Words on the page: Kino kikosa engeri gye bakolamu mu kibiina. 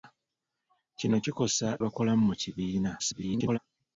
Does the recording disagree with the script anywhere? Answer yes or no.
yes